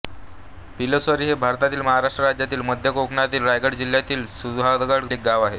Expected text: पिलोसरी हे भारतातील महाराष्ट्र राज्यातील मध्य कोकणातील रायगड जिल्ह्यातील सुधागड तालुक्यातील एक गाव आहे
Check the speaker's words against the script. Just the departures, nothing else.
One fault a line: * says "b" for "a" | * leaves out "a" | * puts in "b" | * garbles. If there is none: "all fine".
* leaves out "तालुक्यातील"